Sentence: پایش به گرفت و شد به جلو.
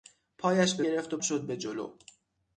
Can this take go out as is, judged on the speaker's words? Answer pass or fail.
pass